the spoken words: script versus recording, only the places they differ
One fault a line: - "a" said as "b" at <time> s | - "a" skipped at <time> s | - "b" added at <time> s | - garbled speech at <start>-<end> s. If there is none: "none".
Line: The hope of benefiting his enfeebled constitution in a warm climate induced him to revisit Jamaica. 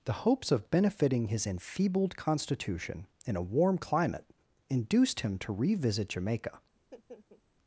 - "hope" said as "hopes" at 0.1 s